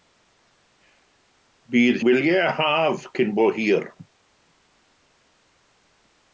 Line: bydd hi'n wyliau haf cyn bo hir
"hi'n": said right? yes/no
no